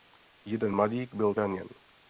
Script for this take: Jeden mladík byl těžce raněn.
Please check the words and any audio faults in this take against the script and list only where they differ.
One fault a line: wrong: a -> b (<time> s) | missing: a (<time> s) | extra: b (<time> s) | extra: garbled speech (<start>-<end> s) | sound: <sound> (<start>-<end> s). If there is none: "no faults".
missing: těžce (1.3 s)